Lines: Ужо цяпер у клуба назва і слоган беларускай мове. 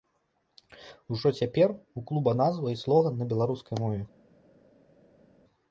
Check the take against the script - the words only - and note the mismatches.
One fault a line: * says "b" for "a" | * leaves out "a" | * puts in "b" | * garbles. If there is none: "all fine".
* puts in "на"